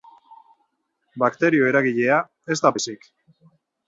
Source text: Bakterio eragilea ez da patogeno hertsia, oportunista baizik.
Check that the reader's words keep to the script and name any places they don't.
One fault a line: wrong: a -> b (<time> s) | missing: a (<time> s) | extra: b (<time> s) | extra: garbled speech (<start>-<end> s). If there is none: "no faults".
missing: patogeno hertsia oportunista (2.7 s)